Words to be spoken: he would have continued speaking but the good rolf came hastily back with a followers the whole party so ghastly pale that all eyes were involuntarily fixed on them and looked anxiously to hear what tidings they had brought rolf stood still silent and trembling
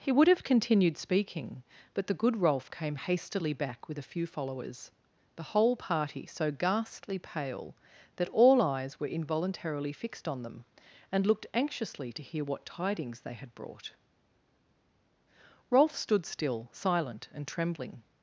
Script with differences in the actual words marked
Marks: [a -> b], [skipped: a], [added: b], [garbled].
he would have continued speaking but the good rolf came hastily back with a [added: few] followers the whole party so ghastly pale that all eyes were involuntarily fixed on them and looked anxiously to hear what tidings they had brought rolf stood still silent and trembling